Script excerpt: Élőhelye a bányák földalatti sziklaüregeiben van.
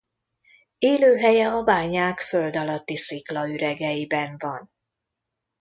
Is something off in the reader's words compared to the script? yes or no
no